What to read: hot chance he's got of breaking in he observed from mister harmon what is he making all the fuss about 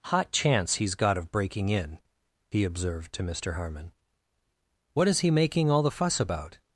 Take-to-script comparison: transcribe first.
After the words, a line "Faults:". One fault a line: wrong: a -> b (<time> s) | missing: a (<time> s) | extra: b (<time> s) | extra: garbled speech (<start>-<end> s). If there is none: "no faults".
hot chance he's got of breaking in he observed to mister harmon what is he making all the fuss about
Faults:
wrong: from -> to (3.1 s)